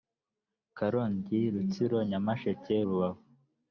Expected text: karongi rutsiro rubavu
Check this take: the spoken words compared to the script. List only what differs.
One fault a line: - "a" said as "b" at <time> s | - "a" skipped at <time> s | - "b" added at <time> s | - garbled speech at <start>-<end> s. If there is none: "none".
- "nyamasheke" added at 2.1 s